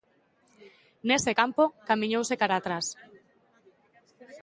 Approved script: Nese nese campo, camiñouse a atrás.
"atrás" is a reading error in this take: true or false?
false